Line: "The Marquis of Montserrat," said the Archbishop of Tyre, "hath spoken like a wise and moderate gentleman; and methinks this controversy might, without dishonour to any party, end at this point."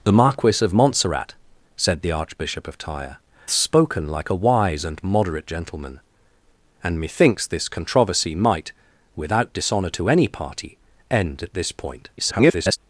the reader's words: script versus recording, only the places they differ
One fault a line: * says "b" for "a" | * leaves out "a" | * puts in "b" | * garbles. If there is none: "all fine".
* leaves out "hath"
* garbles